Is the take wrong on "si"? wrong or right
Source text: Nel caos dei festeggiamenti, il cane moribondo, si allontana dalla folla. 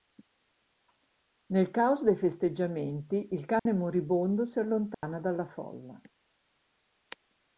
right